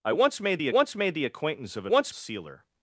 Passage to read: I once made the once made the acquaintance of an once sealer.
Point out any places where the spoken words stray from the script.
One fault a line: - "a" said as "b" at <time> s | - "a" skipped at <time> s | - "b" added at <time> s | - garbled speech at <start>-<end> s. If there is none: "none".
none